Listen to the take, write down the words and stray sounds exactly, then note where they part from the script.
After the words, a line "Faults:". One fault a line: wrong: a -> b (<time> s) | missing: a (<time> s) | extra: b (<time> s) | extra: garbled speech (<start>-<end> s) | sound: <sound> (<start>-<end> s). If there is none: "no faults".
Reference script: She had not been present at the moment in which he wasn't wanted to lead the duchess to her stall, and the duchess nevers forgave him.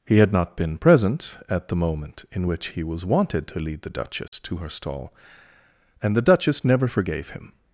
He had not been present at the moment in which he was wanted to lead the duchess to her stall, and the duchess never forgave him.
Faults:
wrong: She -> He (0.1 s)
wrong: wasn't -> was (2.8 s)
sound: dropout (4.3-4.3 s)
wrong: nevers -> never (6.6 s)